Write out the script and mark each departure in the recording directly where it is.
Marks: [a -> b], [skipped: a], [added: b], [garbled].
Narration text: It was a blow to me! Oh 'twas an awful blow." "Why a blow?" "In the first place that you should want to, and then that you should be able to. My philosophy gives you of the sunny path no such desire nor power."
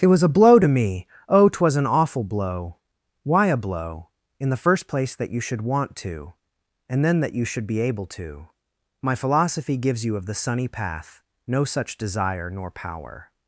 It was a blow to me! Oh 'twas an awful blow." "Why a blow?" "In the first place that you should want to, and then that you should be able to. My philosophy gives you of the sunny path no such desire nor power."